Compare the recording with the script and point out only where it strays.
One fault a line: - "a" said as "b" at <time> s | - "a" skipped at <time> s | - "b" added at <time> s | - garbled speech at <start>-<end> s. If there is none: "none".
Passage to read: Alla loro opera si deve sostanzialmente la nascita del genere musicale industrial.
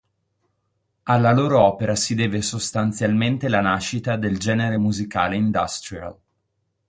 none